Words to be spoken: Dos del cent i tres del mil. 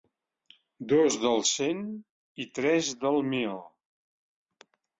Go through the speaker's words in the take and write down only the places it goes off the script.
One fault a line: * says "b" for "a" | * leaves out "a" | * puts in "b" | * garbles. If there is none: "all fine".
all fine